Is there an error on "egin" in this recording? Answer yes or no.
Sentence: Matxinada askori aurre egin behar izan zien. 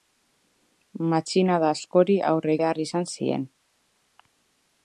yes